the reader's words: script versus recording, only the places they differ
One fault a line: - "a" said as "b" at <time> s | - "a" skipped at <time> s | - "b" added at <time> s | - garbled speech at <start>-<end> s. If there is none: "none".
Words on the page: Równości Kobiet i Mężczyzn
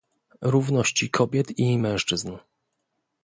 none